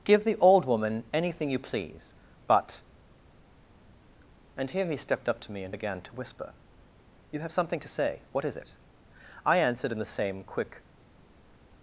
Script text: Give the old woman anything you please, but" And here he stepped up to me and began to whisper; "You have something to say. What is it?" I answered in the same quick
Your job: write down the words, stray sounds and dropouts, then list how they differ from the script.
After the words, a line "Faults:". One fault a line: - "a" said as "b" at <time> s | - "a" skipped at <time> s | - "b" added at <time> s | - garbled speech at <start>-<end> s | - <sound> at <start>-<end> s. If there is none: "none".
Give the old woman anything you please, but" And here he stepped up to me and began to whisper; "You have something to say. What is it?" I answered in the same quick
Faults:
none